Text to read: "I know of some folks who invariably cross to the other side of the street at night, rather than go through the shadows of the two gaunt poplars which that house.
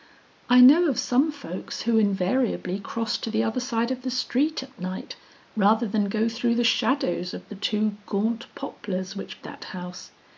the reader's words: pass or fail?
pass